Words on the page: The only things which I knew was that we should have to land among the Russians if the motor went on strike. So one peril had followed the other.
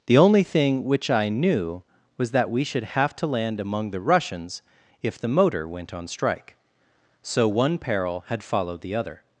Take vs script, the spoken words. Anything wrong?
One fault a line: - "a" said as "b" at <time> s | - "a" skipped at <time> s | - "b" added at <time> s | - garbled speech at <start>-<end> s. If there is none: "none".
- "things" said as "thing" at 0.4 s